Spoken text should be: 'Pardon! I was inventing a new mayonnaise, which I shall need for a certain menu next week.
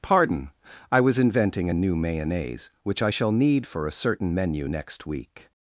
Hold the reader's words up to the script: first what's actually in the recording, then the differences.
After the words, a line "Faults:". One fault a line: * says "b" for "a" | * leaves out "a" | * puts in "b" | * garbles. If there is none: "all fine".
'Pardon! I was inventing a new mayonnaise, which I shall need for a certain menu next week.
Faults:
all fine